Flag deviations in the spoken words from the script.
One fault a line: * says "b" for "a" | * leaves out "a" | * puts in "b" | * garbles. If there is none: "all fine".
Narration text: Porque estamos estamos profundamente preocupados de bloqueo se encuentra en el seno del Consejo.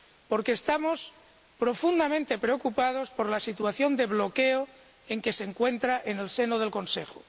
* leaves out "estamos"
* puts in "por la situación"
* puts in "en que"